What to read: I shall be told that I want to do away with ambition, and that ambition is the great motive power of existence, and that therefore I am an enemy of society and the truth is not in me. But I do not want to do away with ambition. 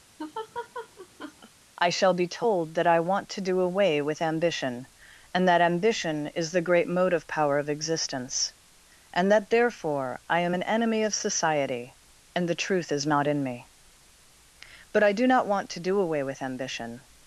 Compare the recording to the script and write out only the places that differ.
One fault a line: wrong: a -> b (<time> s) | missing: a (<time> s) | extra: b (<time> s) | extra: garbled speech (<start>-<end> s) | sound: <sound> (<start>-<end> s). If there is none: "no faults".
sound: laugh (0.2-1.5 s)